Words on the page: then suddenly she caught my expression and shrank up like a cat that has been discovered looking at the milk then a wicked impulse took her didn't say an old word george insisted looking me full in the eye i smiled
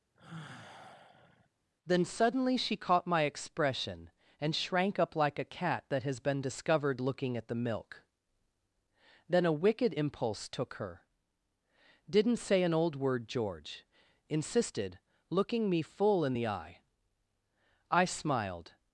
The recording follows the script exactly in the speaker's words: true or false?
true